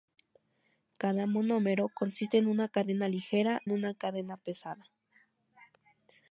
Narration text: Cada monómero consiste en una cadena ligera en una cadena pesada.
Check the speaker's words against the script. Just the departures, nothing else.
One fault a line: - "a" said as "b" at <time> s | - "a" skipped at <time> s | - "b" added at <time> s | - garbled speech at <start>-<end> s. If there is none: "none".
none